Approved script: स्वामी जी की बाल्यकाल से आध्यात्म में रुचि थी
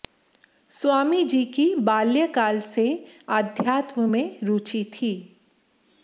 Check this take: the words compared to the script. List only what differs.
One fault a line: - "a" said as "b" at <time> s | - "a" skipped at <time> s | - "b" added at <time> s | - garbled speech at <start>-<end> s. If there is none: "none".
none